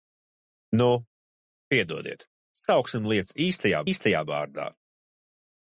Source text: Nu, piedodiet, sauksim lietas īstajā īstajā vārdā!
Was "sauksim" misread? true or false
false